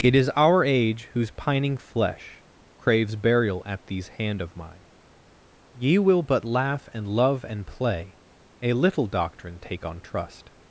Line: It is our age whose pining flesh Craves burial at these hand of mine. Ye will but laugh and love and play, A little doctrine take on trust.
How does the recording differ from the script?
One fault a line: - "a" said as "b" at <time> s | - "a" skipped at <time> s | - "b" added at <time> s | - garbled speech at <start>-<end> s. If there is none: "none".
none